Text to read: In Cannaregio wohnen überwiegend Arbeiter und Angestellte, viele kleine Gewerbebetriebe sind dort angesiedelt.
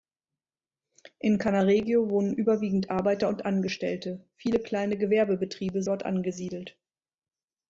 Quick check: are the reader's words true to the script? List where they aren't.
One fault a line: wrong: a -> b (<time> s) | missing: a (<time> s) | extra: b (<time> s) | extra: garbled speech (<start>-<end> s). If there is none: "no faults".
missing: sind (5.8 s)